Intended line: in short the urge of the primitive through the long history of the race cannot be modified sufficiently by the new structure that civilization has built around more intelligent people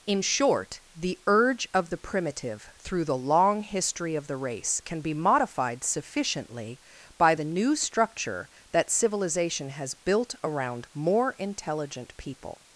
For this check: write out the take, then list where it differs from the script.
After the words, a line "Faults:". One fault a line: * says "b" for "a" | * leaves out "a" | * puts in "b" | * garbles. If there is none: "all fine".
in short the urge of the primitive through the long history of the race can be modified sufficiently by the new structure that civilization has built around more intelligent people
Faults:
* says "can" for "cannot"